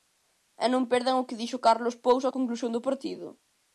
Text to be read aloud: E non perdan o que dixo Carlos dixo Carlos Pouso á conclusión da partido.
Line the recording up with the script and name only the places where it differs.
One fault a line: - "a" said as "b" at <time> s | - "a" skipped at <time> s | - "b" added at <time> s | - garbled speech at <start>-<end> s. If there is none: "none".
- "dixo Carlos" skipped at 1.9 s
- "da" said as "do" at 2.7 s